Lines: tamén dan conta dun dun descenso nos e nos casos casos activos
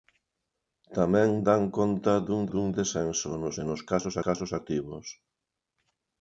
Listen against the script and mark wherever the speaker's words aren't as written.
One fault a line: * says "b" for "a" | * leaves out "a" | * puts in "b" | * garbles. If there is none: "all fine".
all fine